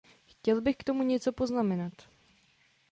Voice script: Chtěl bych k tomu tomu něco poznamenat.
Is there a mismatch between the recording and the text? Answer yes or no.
yes